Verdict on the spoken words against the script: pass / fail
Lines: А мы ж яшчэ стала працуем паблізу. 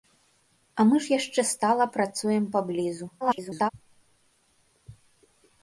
fail